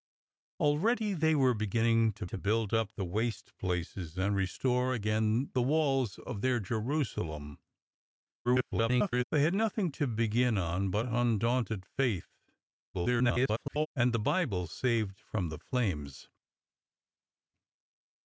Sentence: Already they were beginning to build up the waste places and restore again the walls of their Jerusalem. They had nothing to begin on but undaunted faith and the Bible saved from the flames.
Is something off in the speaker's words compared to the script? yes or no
yes